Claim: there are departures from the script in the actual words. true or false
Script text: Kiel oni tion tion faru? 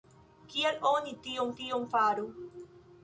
false